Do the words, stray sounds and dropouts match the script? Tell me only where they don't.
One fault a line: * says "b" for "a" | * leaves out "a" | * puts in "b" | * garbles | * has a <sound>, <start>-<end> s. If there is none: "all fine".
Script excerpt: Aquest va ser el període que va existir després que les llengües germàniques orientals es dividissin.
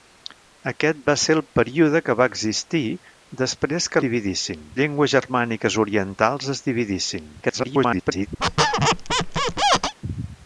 * says "dividissin" for "les"
* garbles
* has a squeak, 8.4-9.9 s